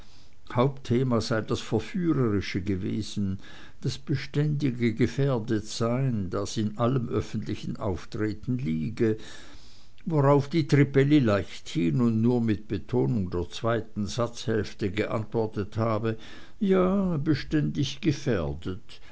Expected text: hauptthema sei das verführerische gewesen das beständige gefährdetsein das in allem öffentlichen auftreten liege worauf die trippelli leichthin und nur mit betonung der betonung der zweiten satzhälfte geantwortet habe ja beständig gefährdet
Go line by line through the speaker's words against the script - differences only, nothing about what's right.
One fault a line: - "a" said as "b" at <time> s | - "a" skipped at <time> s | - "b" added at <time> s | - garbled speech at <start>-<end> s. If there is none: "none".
- "betonung der" skipped at 13.5 s